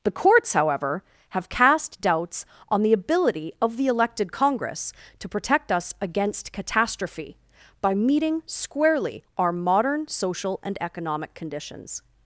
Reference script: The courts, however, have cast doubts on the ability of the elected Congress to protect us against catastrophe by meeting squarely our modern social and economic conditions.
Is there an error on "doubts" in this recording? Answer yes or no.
no